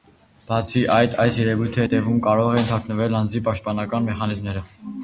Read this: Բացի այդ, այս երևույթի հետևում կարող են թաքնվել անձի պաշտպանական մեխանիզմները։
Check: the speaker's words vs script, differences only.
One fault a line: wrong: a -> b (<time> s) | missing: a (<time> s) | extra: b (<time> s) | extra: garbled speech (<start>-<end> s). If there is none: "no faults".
no faults